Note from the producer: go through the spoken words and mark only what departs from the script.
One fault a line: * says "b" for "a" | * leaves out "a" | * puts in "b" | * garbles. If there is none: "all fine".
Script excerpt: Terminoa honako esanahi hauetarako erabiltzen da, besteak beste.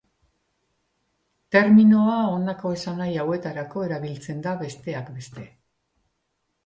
all fine